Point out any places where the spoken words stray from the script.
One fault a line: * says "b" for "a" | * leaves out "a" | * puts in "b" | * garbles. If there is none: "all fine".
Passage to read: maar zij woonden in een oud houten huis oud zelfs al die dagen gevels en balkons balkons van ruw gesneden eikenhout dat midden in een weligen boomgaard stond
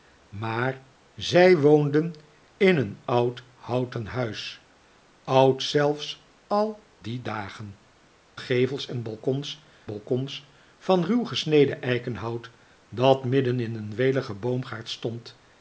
all fine